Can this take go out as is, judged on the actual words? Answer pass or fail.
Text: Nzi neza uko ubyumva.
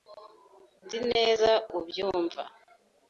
fail